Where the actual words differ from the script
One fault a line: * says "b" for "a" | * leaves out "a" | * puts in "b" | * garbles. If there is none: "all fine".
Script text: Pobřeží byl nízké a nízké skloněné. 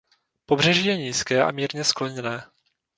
* says "je" for "byl"
* says "mírně" for "nízké"